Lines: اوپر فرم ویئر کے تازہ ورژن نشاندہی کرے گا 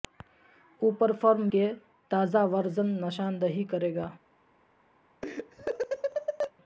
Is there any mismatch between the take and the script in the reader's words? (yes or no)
yes